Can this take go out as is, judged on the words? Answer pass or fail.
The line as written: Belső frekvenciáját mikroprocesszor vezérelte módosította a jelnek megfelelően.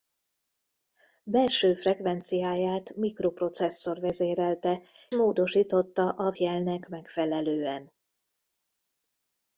pass